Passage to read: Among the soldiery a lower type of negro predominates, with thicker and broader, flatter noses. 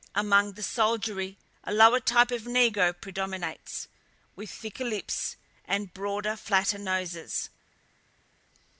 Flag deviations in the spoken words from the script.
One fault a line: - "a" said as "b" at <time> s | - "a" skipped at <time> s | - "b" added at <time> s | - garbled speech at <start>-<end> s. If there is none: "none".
- "lips" added at 4.8 s